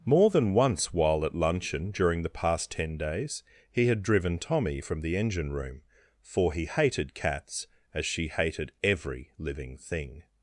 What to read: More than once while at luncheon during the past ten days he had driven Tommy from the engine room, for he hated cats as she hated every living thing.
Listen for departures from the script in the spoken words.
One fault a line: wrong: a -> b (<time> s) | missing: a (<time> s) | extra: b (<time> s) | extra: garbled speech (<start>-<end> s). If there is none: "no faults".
no faults